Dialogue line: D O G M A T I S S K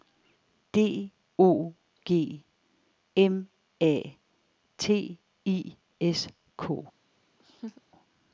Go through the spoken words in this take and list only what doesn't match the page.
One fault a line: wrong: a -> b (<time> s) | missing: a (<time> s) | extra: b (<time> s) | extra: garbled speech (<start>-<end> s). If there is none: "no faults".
missing: S (6.3 s)